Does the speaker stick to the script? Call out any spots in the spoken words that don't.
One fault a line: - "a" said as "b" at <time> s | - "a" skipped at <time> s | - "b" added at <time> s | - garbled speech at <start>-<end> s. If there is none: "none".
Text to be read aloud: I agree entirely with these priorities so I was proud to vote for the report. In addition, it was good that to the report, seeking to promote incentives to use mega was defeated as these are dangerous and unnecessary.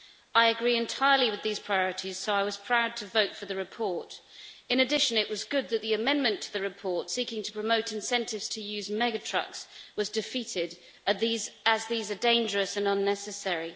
- "the amendment" added at 5.8 s
- "trucks" added at 9.2 s